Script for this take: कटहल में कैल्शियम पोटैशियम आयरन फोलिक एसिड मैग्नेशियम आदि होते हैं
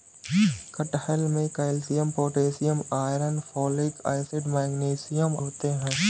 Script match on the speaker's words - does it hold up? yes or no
no